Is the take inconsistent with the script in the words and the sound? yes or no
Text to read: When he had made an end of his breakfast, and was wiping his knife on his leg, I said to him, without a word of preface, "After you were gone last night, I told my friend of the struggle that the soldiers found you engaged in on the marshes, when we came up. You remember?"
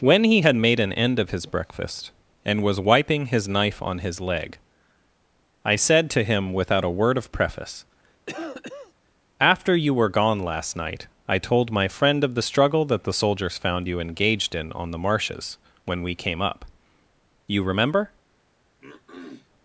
yes